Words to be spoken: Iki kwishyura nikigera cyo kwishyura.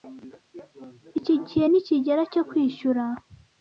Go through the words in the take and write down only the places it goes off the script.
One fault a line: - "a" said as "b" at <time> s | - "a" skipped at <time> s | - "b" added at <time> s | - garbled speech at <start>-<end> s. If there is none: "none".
- "kwishyura" said as "gihe" at 1.5 s